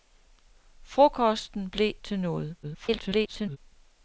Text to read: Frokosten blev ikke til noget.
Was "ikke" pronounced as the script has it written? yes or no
no